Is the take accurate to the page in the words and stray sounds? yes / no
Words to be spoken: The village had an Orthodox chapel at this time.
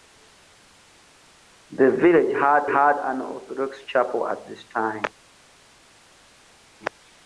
no